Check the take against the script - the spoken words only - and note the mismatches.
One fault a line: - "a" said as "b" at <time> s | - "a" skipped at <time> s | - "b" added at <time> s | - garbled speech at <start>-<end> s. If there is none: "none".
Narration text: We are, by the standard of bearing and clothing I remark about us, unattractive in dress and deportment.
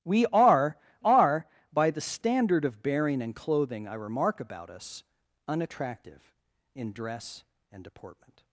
- "are" added at 1.0 s